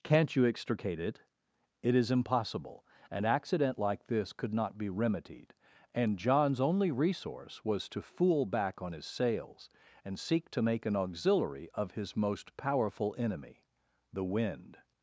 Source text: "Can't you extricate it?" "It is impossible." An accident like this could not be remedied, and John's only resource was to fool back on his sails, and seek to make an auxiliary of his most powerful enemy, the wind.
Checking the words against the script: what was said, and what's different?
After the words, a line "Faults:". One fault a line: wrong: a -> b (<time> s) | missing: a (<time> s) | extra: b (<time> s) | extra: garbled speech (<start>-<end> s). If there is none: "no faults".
"Can't you extricate it?" "It is impossible." An accident like this could not be remedied, and John's only resource was to fool back on his sails, and seek to make an auxiliary of his most powerful enemy, the wind.
Faults:
no faults